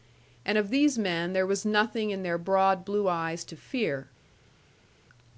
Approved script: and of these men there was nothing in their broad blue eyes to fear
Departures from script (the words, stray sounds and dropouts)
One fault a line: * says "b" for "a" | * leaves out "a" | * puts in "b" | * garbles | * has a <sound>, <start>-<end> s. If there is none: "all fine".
all fine